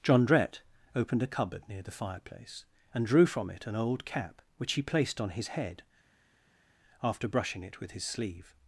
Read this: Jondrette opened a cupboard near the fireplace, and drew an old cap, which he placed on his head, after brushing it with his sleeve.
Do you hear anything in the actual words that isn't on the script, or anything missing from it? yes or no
yes